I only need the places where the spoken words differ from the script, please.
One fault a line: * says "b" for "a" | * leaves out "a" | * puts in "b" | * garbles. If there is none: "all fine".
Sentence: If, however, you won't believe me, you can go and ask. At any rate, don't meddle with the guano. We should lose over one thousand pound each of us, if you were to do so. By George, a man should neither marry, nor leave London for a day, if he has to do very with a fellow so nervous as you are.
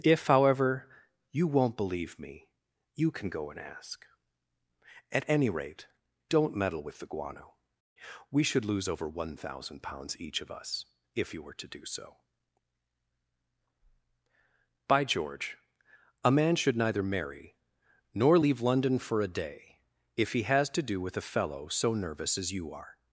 * says "pounds" for "pound"
* leaves out "very"